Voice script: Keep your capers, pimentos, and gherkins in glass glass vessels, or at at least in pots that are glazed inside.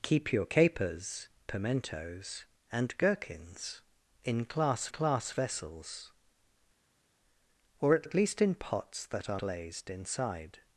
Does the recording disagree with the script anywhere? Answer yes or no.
no